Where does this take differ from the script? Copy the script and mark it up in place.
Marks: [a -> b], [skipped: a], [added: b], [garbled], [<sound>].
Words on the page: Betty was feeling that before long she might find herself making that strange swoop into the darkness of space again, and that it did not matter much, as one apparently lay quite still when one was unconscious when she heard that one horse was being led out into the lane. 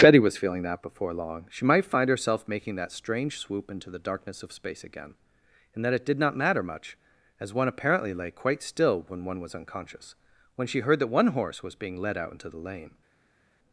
Betty was feeling that before long she might find herself making that strange swoop into the darkness of space again, and that it did not matter much, as one apparently lay quite still when one was unconscious when she heard that one horse was being led out into the lane.